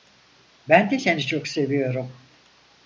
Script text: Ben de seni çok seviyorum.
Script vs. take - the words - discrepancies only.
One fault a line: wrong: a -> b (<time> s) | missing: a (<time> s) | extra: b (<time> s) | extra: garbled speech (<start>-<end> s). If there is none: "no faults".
no faults